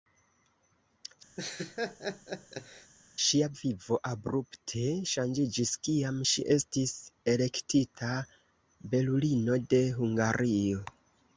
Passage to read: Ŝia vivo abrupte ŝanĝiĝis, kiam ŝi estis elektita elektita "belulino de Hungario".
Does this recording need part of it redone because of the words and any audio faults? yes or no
yes